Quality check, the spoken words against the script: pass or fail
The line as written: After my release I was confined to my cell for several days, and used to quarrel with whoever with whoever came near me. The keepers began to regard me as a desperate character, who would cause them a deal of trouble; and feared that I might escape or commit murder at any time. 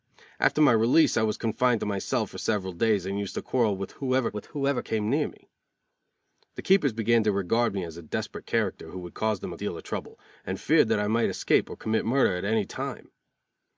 pass